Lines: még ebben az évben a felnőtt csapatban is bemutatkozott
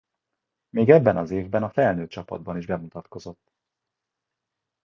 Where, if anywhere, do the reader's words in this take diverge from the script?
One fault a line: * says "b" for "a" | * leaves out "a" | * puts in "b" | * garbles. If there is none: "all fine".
all fine